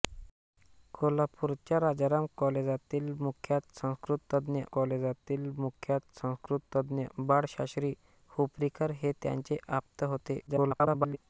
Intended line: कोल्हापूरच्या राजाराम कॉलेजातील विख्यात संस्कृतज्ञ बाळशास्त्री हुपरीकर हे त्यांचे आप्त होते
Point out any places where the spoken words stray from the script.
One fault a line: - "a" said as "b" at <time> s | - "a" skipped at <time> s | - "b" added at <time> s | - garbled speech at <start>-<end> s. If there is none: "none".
- "कॉलेजातील विख्यात संस्कृतज्ञ" added at 4.7 s
- garbled speech at 10.5-11.2 s